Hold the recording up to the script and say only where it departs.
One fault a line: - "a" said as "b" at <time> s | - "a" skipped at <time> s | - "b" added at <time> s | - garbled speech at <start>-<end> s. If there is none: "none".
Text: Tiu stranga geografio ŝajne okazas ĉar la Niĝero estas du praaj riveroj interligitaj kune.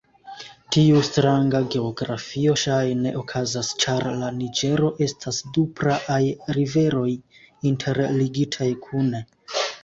none